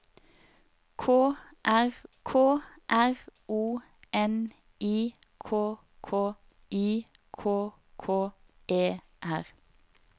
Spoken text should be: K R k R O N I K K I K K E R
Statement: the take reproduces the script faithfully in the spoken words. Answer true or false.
true